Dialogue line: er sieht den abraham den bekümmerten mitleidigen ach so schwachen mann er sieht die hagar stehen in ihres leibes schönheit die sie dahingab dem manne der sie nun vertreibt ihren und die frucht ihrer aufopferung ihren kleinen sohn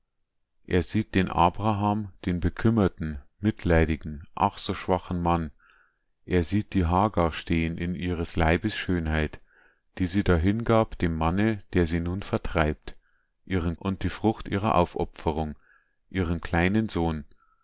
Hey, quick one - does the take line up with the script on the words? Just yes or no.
yes